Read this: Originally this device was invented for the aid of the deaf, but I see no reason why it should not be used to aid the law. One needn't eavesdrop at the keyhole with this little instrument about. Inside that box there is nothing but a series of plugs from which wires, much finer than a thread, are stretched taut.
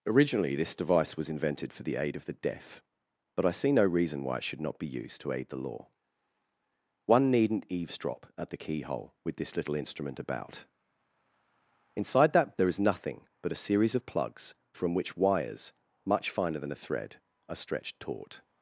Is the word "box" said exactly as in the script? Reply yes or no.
no